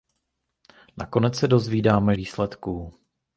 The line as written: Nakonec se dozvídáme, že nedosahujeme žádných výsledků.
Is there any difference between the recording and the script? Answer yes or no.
yes